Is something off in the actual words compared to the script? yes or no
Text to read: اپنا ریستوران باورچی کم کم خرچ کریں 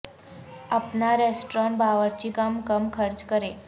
no